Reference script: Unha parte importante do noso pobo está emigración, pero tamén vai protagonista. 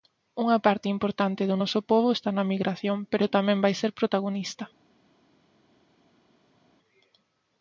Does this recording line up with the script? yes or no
no